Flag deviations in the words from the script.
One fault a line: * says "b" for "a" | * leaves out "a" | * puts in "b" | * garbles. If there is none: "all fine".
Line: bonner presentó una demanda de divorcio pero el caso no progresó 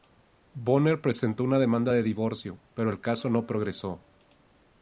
all fine